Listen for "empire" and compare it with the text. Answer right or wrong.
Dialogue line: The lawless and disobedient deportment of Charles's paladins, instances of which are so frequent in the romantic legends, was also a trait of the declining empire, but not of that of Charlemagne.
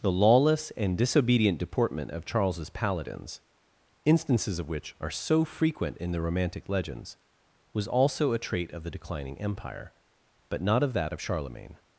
right